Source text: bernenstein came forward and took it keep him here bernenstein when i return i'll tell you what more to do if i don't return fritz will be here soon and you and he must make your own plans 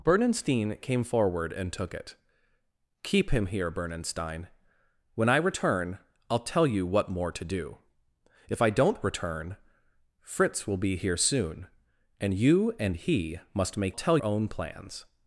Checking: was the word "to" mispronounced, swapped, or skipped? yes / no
no